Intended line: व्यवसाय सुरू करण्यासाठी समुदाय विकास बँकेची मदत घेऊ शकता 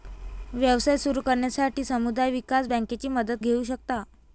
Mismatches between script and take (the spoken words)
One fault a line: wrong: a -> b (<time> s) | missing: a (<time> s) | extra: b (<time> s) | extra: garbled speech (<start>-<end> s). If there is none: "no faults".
no faults